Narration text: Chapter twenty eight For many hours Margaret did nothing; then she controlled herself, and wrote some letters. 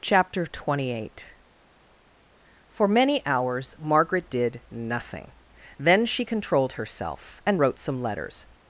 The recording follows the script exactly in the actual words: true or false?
true